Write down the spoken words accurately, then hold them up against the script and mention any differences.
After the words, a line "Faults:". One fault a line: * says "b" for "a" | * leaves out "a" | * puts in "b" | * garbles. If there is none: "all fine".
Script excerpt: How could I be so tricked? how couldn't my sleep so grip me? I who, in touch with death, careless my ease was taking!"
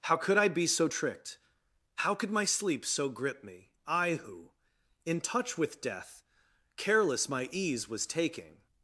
How could I be so tricked? how could my sleep so grip me? I who, in touch with death, careless my ease was taking!"
Faults:
* says "could" for "couldn't"